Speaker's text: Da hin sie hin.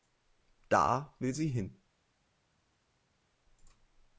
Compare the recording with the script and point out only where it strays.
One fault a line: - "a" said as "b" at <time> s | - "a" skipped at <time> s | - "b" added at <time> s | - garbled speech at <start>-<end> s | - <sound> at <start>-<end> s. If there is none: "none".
- "hin" said as "will" at 1.2 s